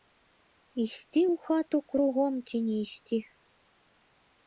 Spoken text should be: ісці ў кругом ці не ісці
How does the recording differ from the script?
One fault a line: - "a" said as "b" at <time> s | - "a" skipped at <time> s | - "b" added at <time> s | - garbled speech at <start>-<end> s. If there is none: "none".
- "хату" added at 1.5 s